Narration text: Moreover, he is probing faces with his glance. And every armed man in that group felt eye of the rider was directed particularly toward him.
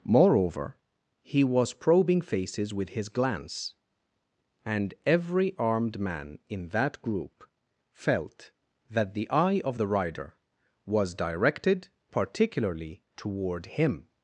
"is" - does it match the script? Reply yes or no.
no